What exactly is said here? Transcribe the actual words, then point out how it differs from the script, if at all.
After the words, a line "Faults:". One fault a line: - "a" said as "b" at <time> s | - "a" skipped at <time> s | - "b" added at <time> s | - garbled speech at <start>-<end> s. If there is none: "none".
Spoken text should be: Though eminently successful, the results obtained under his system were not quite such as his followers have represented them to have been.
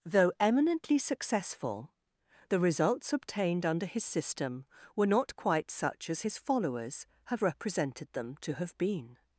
Though eminently successful, the results obtained under his system were not quite such as his followers have represented them to have been.
Faults:
none